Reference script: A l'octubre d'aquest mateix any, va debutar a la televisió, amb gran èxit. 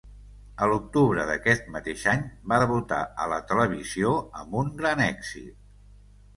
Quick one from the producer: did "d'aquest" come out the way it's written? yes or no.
yes